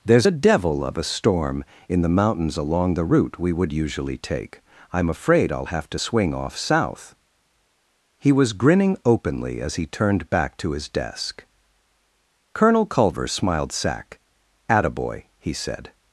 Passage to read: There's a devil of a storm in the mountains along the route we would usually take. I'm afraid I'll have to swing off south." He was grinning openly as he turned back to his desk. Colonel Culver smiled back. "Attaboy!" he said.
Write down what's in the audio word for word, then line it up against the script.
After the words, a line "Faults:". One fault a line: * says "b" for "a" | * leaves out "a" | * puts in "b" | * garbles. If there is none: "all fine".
There's a devil of a storm in the mountains along the route we would usually take. I'm afraid I'll have to swing off south." He was grinning openly as he turned back to his desk. Colonel Culver smiled sack. "Attaboy!" he said.
Faults:
* says "sack" for "back"